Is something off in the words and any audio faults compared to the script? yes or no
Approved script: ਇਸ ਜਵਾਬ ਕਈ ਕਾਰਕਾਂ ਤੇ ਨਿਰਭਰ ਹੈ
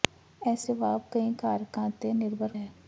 no